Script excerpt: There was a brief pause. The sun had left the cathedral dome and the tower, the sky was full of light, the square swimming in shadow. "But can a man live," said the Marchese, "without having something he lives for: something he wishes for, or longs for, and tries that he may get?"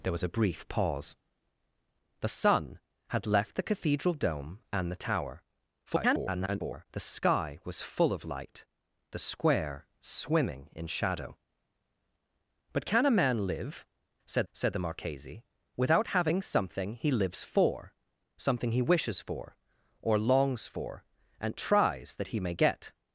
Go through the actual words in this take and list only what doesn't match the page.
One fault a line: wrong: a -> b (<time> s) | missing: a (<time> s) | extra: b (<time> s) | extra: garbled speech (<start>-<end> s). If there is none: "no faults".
extra: garbled speech (5.9-6.9 s)
extra: said (14.5 s)